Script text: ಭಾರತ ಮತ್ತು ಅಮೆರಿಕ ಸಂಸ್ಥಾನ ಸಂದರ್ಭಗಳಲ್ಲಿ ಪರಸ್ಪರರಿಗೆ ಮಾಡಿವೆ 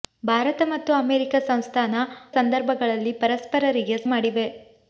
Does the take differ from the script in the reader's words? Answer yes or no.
no